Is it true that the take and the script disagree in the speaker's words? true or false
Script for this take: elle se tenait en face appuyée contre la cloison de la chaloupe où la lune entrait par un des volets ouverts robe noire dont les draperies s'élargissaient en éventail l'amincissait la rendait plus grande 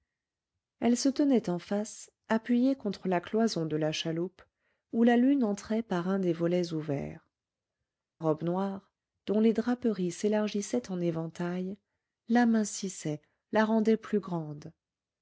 false